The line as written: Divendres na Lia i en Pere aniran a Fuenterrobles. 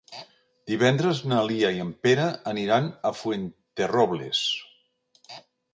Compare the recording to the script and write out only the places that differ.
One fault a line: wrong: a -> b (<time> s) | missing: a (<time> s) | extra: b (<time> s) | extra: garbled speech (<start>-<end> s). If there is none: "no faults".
no faults